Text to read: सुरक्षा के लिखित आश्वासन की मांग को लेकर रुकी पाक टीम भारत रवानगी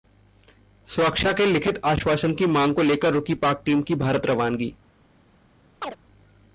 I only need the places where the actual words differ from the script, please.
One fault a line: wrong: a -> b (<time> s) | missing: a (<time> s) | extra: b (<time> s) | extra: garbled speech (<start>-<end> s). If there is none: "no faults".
extra: की (3.8 s)